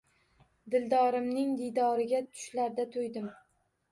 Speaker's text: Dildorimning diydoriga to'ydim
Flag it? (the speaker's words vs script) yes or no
yes